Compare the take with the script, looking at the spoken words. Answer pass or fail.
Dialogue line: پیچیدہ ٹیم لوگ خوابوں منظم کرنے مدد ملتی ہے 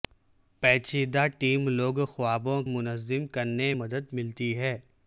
pass